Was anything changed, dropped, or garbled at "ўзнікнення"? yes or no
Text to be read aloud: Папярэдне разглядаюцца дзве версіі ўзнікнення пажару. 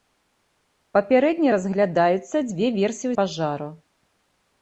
yes